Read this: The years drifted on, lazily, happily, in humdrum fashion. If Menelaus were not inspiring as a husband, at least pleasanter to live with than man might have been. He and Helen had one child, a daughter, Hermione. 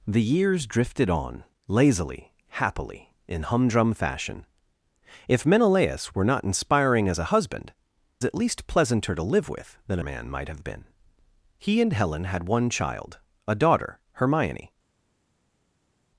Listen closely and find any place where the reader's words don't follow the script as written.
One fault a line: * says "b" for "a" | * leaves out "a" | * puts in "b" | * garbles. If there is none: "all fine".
all fine